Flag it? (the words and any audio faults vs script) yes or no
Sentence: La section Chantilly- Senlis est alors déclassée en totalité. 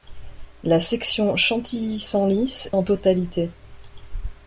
yes